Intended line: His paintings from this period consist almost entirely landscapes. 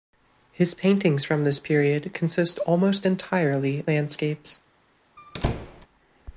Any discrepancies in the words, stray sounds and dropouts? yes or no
yes